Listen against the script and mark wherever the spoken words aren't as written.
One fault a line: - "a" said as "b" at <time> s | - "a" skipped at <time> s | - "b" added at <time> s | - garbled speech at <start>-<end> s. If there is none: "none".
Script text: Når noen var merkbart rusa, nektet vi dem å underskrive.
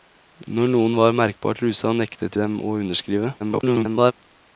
- "vi" skipped at 2.4 s
- garbled speech at 3.4-4.1 s